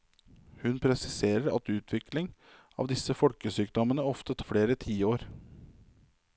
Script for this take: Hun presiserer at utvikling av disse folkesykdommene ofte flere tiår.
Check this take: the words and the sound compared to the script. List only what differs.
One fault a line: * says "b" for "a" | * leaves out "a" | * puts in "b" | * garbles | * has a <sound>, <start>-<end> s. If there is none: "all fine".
all fine